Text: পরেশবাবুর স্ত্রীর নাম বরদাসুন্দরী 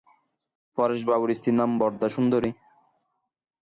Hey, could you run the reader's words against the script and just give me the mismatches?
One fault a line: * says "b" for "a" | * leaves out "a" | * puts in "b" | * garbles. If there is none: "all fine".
all fine